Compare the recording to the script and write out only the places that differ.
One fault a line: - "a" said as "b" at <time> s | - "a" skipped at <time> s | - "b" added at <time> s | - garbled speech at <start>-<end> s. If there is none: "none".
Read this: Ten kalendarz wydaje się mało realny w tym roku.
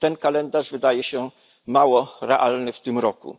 none